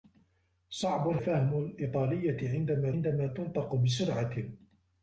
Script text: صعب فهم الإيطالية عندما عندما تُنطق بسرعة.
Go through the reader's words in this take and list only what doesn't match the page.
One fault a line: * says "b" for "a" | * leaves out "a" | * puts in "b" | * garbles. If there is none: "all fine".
all fine